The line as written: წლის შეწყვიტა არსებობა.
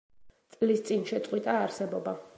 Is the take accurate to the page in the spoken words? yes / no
no